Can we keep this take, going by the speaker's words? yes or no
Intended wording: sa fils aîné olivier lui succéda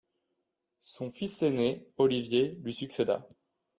no